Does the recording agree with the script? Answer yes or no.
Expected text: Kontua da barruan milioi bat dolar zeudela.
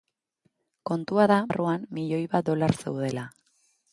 yes